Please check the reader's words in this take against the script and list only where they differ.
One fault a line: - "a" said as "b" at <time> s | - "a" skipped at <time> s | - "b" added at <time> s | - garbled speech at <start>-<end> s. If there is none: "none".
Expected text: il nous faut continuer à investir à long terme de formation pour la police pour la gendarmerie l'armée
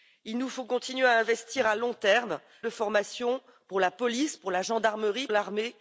none